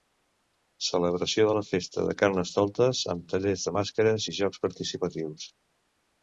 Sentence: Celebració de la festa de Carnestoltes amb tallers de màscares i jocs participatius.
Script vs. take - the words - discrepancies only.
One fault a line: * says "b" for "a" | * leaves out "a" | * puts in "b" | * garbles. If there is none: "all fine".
all fine